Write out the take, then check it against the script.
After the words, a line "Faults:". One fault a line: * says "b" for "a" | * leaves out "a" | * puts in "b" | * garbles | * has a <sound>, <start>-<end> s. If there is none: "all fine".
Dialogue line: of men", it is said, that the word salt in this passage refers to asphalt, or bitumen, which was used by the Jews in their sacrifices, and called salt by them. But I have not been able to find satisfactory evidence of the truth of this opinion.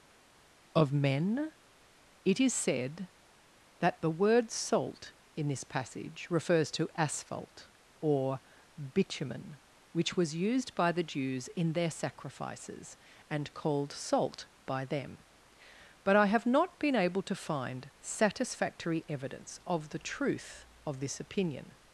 of men", it is said, that the word salt in this passage refers to asphalt, or bitumen, which was used by the Jews in their sacrifices, and called salt by them. But I have not been able to find satisfactory evidence of the truth of this opinion.
Faults:
all fine